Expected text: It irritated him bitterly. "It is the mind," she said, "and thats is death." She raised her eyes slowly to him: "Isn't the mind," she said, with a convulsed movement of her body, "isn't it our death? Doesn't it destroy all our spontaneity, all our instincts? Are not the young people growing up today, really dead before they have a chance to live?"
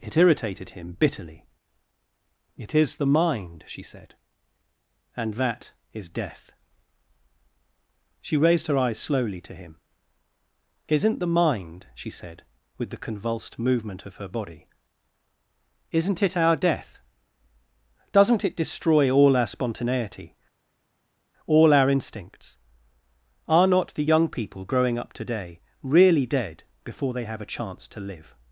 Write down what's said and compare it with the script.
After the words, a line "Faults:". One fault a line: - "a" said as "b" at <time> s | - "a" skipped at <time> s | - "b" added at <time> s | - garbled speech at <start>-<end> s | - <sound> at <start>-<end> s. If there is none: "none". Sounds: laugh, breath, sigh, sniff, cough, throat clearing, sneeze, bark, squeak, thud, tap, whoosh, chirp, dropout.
It irritated him bitterly. "It is the mind," she said, "and that is death." She raised her eyes slowly to him: "Isn't the mind," she said, with the convulsed movement of her body, "isn't it our death? Doesn't it destroy all our spontaneity, all our instincts? Are not the young people growing up today, really dead before they have a chance to live?"
Faults:
- "thats" said as "that" at 5.3 s
- "a" said as "the" at 12.9 s